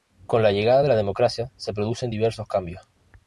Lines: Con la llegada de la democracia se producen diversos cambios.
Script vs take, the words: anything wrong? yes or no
no